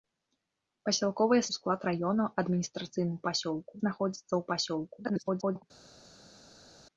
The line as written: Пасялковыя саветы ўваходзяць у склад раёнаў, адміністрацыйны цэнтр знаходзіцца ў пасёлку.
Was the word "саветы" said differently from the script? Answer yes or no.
yes